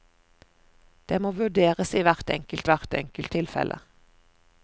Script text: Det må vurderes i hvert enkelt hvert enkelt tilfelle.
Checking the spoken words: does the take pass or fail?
pass